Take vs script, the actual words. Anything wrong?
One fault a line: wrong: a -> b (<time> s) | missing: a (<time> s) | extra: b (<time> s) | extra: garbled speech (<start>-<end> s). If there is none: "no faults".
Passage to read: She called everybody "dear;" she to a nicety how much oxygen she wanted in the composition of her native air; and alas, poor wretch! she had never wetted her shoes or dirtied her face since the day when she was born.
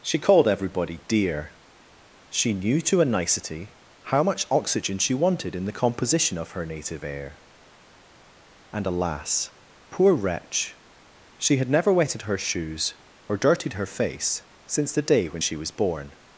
extra: knew (2.5 s)